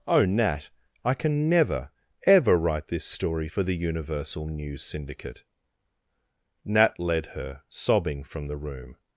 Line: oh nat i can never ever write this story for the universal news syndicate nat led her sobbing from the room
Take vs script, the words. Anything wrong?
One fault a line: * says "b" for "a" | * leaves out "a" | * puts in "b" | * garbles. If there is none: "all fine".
all fine